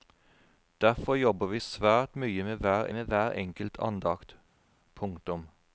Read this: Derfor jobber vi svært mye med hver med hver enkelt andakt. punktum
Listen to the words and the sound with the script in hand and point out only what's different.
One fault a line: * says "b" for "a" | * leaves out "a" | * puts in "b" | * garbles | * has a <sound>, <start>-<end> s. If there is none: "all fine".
all fine